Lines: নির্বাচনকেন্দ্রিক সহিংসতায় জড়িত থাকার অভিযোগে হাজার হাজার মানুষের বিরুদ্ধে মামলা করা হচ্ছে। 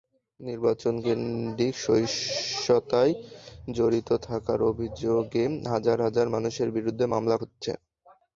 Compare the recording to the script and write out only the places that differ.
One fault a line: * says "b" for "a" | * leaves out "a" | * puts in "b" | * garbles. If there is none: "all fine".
* leaves out "করা"